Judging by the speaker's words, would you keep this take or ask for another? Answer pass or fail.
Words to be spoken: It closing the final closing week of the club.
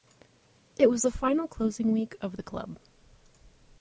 fail